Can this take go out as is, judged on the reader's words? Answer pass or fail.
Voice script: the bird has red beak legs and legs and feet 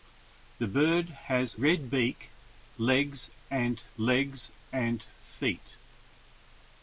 pass